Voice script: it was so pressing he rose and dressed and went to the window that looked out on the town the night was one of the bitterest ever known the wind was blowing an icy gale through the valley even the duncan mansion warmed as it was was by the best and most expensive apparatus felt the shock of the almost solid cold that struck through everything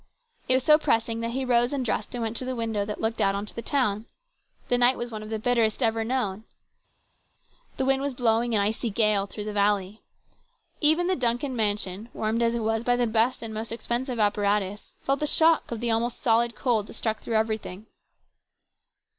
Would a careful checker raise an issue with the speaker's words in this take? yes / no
yes